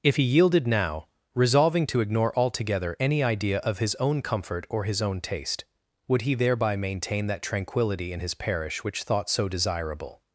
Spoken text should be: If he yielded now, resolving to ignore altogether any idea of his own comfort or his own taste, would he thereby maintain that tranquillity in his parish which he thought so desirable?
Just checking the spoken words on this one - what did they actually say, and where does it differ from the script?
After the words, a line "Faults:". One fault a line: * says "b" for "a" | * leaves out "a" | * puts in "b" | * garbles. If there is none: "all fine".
If he yielded now, resolving to ignore altogether any idea of his own comfort or his own taste, would he thereby maintain that tranquillity in his parish which thought so desirable?
Faults:
* leaves out "he"